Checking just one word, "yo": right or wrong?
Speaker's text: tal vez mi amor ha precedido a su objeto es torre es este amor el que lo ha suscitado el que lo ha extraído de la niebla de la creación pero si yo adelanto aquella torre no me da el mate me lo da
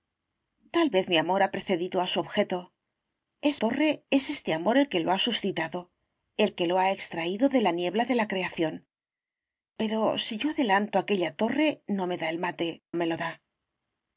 right